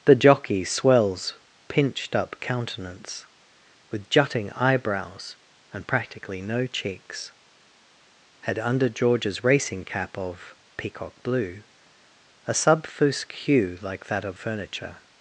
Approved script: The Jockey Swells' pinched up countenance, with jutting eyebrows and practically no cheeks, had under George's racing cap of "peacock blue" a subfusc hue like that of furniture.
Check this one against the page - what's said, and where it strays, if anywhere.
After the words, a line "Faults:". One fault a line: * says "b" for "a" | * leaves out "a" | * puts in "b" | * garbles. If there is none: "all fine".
The Jockey Swells' pinched up countenance, with jutting eyebrows and practically no cheeks, had under George's racing cap of "peacock blue" a subfusc hue like that of furniture.
Faults:
all fine